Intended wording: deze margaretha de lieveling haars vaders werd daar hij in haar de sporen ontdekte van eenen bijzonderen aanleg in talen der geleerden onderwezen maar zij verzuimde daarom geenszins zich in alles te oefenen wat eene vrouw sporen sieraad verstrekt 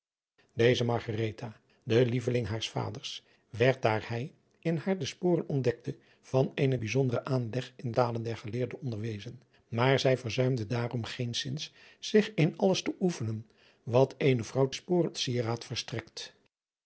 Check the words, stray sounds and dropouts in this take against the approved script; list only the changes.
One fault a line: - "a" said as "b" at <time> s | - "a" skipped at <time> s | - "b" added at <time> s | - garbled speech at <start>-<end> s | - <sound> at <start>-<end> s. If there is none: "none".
none